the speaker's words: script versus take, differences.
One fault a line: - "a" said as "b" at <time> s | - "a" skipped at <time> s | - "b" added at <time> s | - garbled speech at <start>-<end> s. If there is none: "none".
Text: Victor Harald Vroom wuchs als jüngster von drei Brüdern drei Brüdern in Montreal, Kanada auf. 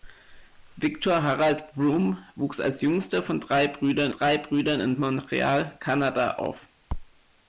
none